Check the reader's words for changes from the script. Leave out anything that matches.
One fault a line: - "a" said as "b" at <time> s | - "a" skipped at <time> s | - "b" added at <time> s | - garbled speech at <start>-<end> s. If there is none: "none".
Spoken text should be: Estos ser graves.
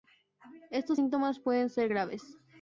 - "síntomas pueden" added at 0.9 s